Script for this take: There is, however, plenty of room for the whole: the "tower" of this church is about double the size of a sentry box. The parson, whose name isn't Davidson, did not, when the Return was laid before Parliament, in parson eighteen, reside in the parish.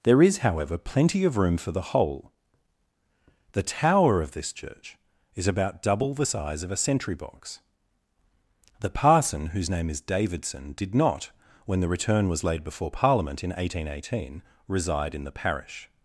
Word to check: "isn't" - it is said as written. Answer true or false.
false